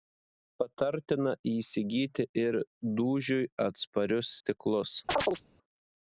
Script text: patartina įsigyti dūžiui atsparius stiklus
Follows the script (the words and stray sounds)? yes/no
no